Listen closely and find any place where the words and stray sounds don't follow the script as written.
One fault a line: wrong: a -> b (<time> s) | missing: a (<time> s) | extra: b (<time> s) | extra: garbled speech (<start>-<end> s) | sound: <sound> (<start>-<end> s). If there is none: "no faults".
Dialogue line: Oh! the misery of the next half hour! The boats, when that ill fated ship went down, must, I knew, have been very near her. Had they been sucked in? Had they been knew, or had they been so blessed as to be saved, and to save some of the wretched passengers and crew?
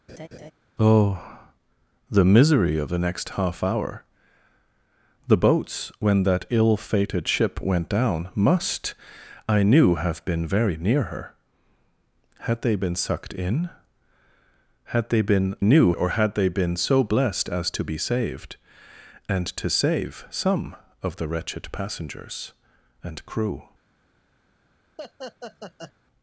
sound: laugh (0.1-0.5 s)
sound: laugh (25.0-25.9 s)